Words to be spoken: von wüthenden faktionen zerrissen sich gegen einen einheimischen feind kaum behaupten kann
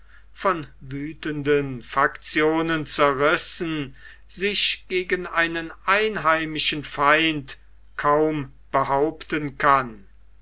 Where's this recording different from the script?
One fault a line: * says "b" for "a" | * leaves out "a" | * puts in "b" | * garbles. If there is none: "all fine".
all fine